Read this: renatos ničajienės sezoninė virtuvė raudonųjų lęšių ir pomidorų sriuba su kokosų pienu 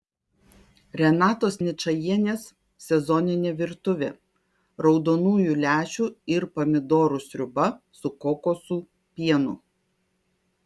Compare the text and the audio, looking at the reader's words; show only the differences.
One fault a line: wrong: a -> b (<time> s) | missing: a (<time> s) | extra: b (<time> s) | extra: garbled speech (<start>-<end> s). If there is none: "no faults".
no faults